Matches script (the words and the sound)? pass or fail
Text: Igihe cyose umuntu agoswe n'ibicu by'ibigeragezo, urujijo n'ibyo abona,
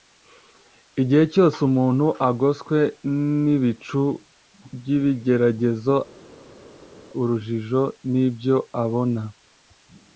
pass